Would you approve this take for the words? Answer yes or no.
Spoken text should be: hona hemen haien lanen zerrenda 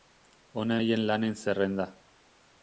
no